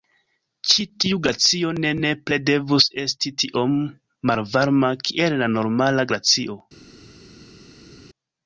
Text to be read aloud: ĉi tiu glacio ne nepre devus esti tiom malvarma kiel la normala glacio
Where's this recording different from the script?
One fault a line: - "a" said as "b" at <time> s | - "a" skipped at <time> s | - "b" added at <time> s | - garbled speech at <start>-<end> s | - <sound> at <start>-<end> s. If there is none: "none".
none